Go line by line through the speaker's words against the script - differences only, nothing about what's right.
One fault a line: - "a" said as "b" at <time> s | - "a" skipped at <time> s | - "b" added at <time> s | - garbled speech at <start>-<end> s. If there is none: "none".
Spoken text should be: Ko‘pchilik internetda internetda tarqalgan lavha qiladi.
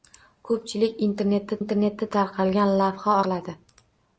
none